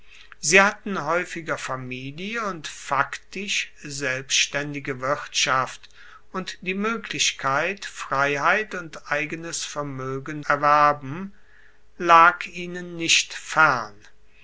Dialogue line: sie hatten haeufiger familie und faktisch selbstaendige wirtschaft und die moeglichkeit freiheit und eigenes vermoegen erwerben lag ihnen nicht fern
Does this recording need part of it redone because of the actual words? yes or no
no